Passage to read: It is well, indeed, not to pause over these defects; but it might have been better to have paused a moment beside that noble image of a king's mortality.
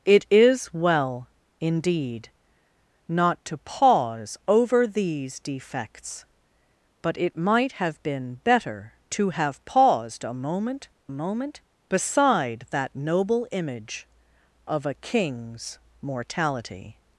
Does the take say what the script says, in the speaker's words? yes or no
no